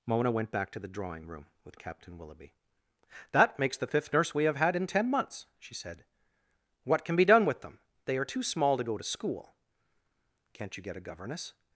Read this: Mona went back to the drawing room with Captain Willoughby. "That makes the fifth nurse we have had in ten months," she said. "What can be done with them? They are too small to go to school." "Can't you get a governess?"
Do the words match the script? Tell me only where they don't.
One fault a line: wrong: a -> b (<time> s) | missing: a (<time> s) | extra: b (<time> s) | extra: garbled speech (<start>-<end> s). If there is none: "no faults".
no faults